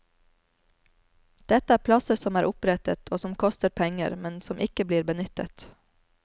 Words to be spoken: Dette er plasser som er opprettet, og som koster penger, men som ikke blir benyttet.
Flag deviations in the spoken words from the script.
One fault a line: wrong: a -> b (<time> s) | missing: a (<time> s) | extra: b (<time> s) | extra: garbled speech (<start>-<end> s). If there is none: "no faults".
no faults